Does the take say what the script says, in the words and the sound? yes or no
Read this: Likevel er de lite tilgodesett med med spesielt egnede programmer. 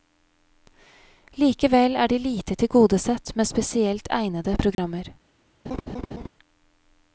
no